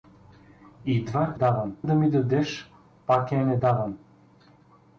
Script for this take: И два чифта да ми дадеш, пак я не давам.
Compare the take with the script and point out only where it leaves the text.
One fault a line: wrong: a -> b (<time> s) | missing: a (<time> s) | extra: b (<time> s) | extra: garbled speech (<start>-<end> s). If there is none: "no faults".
wrong: чифта -> давам (1.3 s)